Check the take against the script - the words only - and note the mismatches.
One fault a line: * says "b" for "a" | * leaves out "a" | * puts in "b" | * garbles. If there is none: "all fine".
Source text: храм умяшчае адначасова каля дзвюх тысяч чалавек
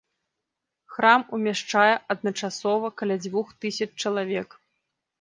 all fine